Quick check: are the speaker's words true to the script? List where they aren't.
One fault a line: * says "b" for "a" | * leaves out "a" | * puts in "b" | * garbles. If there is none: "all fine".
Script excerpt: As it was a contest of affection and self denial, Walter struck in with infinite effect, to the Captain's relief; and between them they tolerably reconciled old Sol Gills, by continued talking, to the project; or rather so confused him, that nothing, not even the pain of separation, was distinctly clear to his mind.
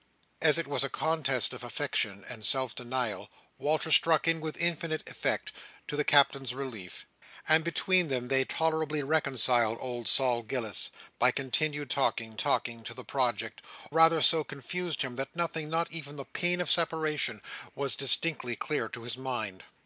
* puts in "talking"
* leaves out "or"